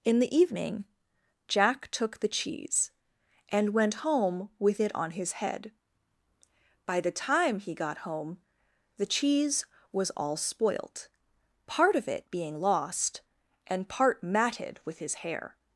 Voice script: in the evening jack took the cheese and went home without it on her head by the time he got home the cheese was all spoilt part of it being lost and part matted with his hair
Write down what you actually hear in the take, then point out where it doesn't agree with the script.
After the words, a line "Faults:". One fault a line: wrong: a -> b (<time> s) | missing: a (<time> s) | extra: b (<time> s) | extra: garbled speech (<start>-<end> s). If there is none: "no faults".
in the evening jack took the cheese and went home with it on his head by the time he got home the cheese was all spoilt part of it being lost and part matted with his hair
Faults:
wrong: without -> with (4.6 s)
wrong: her -> his (5.1 s)